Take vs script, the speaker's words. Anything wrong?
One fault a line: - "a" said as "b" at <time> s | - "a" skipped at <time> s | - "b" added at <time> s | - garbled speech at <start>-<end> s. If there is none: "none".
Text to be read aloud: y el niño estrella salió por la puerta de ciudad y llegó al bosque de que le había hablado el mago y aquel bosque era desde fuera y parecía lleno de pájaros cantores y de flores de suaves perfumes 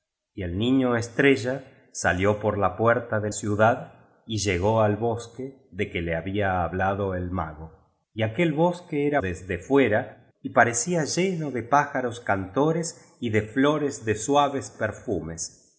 none